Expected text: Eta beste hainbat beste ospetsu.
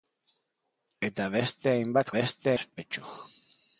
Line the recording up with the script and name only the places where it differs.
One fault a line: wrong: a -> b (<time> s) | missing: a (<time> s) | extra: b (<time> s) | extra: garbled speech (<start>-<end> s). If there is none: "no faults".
no faults